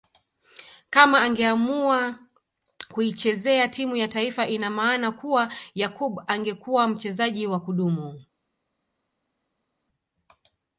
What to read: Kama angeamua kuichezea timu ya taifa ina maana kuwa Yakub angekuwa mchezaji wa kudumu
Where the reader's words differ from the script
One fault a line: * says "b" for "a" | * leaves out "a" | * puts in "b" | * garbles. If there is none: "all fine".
all fine